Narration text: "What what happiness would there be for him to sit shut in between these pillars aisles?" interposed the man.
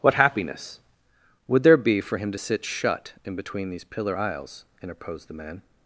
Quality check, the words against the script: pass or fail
fail